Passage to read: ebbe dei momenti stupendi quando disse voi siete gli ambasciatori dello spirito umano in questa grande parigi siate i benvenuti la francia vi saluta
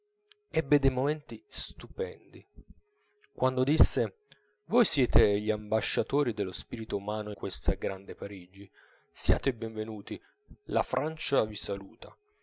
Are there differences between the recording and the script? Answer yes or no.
yes